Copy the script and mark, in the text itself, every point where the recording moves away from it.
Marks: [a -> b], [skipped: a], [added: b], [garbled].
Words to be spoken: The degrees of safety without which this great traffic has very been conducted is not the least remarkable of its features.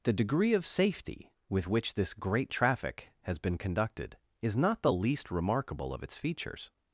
The [degrees -> degree] of safety [without -> with] which this great traffic has [skipped: very] been conducted is not the least remarkable of its features.